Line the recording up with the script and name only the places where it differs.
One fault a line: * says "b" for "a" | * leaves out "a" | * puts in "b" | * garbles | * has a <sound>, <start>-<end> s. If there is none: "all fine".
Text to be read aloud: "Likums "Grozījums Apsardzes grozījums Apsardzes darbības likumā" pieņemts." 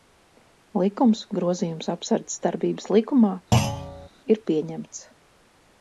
* leaves out "grozījums Apsardzes"
* has a thud, 3.5-4.1 s
* puts in "ir"